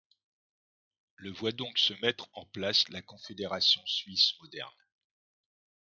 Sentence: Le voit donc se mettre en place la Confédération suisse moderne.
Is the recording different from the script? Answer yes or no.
no